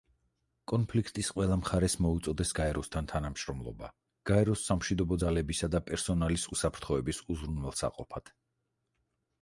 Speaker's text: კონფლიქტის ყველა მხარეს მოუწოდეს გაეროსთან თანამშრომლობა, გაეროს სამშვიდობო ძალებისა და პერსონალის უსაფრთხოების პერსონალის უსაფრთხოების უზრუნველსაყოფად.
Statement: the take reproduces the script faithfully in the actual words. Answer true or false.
false